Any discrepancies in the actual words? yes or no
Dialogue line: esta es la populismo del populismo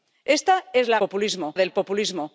no